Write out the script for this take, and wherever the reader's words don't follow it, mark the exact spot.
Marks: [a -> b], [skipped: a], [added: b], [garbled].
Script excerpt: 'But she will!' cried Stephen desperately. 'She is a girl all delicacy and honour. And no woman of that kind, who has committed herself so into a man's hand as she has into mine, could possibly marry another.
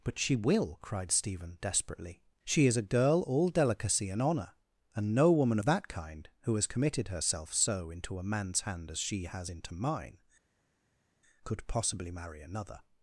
'But she will!' cried Stephen desperately. 'She is a girl all delicacy and honour. And no woman of that kind, who has committed herself so into a man's hand as she has into mine, could possibly marry another.